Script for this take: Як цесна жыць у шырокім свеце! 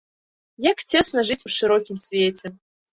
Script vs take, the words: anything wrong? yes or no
no